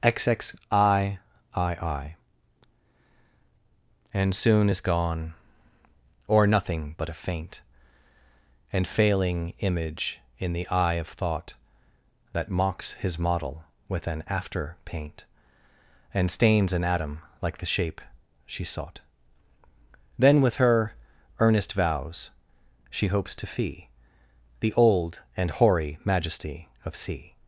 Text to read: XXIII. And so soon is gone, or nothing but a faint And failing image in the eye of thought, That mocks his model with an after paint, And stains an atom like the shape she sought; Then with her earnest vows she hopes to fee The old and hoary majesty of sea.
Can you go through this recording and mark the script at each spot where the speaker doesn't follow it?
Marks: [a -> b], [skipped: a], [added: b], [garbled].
XXIII. And [skipped: so] soon is gone, or nothing but a faint And failing image in the eye of thought, That mocks his model with an after paint, And stains an atom like the shape she sought; Then with her earnest vows she hopes to fee The old and hoary majesty of sea.